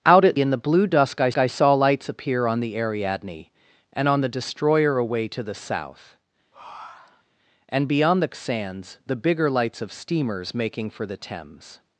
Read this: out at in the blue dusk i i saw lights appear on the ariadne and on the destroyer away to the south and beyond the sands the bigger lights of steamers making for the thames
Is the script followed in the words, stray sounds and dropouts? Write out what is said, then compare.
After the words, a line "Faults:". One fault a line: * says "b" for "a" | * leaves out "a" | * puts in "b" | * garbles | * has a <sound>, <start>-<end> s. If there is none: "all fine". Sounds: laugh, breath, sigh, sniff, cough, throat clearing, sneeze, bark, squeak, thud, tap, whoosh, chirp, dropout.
out at in the blue dusk i i saw lights appear on the ariadne and on the destroyer away to the south and beyond the sands the bigger lights of steamers making for the thames
Faults:
* has a breath, 6.5-7.3 s